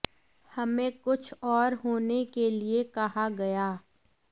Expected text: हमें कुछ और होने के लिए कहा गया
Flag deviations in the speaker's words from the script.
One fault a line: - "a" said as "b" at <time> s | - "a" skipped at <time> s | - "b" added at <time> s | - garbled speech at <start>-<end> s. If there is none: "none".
none